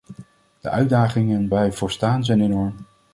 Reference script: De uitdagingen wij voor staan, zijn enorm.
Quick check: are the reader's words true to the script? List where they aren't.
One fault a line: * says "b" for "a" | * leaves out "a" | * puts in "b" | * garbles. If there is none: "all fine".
all fine